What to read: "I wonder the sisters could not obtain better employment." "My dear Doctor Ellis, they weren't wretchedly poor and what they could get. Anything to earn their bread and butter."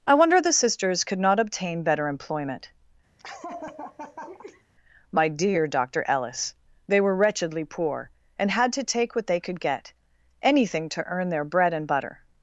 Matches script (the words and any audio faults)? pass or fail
fail